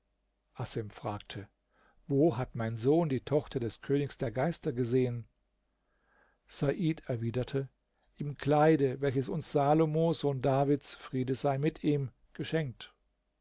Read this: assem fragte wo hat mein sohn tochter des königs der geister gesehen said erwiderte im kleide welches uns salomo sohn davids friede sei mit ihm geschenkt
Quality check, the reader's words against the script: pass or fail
fail